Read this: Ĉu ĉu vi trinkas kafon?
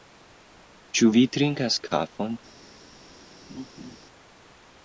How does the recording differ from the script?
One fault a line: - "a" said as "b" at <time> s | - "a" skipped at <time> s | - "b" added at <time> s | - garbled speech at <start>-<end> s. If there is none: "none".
- "ĉu" skipped at 1.1 s